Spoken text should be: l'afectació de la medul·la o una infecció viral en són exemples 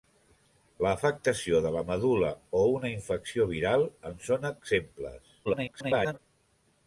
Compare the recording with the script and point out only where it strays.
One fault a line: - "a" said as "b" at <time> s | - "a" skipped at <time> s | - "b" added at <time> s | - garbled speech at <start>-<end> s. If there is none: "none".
- garbled speech at 5.4-6.2 s